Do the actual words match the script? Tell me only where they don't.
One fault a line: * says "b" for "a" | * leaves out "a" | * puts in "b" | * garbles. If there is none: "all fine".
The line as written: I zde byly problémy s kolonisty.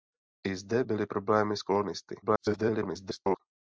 * garbles